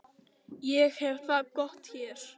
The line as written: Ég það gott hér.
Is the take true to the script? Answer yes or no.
no